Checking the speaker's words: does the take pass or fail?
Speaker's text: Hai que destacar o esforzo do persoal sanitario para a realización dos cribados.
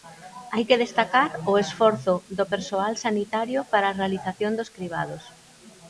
pass